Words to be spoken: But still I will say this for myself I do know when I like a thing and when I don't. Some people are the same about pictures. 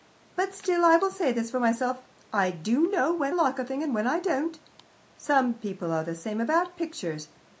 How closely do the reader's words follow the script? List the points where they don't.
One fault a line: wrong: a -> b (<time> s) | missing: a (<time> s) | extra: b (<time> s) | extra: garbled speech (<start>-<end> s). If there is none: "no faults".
missing: I (3.3 s)